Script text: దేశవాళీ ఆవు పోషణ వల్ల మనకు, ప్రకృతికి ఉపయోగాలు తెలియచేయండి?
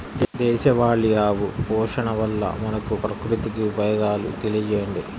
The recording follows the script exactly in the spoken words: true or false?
true